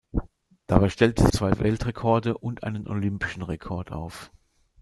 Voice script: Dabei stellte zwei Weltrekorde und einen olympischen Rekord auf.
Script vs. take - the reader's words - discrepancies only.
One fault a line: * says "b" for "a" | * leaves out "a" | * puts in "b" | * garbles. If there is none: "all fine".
all fine